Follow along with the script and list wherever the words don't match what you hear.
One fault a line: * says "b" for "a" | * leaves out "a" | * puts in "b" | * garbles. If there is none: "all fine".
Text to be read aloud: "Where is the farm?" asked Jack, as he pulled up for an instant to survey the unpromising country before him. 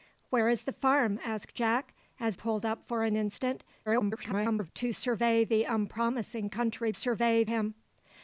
* leaves out "he"
* garbles
* says "survey" for "before"